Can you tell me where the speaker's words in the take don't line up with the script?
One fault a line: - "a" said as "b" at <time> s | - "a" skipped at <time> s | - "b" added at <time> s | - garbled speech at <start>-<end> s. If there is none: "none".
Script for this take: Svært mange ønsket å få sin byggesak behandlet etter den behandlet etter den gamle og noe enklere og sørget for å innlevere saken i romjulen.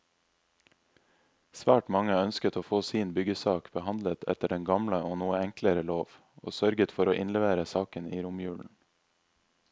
- "behandlet etter den" skipped at 4.6 s
- "lov" added at 5.9 s